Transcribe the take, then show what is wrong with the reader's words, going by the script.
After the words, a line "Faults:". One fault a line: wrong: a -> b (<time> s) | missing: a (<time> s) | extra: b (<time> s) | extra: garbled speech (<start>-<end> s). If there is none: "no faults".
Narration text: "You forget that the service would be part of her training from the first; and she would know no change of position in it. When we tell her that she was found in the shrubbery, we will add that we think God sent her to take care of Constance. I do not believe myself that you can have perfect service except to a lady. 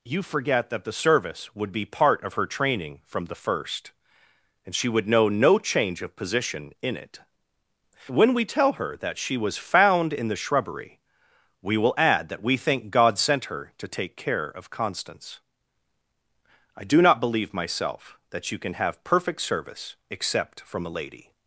"You forget that the service would be part of her training from the first; and she would know no change of position in it. When we tell her that she was found in the shrubbery, we will add that we think God sent her to take care of Constance. I do not believe myself that you can have perfect service except from a lady.
Faults:
wrong: to -> from (20.6 s)